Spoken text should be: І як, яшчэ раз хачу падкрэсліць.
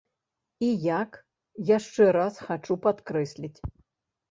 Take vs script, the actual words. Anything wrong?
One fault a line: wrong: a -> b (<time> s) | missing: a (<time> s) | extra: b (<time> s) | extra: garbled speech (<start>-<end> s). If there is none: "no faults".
no faults